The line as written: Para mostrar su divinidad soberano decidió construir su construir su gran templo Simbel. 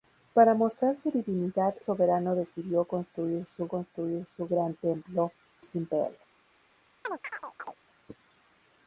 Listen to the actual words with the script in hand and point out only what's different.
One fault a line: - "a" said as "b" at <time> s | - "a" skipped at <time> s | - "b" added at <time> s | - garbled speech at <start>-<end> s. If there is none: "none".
none